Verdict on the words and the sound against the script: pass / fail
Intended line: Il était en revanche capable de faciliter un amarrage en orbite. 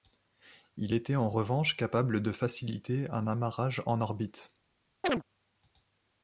fail